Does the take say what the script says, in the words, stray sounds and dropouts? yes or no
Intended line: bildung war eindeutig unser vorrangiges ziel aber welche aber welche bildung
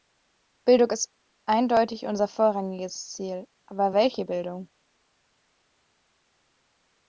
no